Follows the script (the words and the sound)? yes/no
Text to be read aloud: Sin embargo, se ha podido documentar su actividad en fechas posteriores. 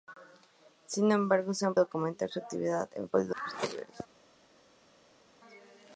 no